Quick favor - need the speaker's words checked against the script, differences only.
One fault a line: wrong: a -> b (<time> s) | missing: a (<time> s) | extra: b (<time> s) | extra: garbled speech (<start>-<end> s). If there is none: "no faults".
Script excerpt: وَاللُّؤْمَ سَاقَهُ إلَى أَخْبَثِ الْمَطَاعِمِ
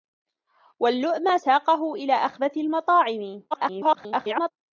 extra: garbled speech (3.5-4.5 s)